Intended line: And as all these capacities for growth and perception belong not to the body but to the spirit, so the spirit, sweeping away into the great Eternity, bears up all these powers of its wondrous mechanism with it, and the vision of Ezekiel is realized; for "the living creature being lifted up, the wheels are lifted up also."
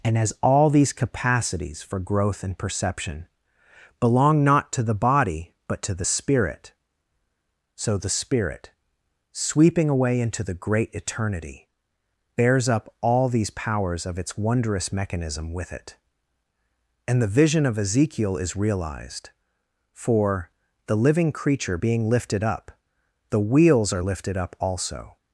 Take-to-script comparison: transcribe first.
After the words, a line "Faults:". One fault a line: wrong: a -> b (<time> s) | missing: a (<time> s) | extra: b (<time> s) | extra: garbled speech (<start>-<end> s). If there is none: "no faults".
And as all these capacities for growth and perception belong not to the body but to the spirit, so the spirit, sweeping away into the great Eternity, bears up all these powers of its wondrous mechanism with it, and the vision of Ezekiel is realized; for "the living creature being lifted up, the wheels are lifted up also."
Faults:
no faults